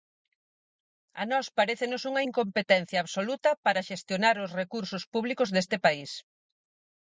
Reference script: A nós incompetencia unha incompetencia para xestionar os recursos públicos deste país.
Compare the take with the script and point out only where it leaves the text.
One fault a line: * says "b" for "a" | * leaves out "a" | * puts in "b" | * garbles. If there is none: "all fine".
* says "parécenos" for "incompetencia"
* puts in "absoluta"